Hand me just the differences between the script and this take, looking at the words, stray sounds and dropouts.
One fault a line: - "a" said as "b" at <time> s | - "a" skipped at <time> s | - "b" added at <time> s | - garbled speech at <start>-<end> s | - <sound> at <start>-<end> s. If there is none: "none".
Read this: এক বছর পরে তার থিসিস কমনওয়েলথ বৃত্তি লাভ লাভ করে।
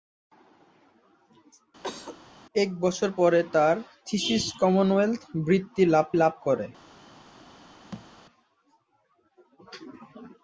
- cough at 1.8-2.2 s
- thud at 7.9-8.1 s